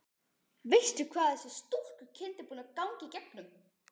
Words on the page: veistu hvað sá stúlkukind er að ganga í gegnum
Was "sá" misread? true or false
true